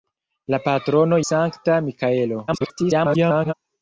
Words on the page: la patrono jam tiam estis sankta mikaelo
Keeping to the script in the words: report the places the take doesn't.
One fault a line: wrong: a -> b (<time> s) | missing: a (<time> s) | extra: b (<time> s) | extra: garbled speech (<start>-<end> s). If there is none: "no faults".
missing: jam tiam estis (1.2 s)
extra: garbled speech (2.5-3.5 s)